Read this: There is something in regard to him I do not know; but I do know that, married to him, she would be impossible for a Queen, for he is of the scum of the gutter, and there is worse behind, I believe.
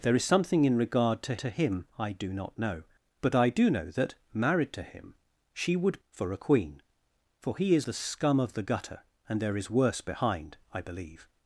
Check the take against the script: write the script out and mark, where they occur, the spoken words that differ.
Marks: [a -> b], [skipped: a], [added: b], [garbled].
There is something in regard to [added: to] him I do not know; but I do know that, married to him, she would [skipped: be impossible] for a Queen, for he is [skipped: of] the scum of the gutter, and there is worse behind, I believe.